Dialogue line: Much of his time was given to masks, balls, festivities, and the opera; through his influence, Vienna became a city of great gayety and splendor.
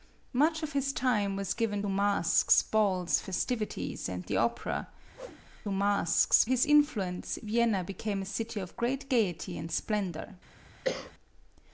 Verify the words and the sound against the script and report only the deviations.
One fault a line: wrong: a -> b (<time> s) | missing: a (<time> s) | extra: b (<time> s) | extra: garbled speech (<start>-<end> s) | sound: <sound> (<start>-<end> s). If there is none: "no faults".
missing: to (1.8 s)
sound: whoosh (5.1-5.4 s)
wrong: through -> masks (5.7 s)
sound: cough (10.8-11.1 s)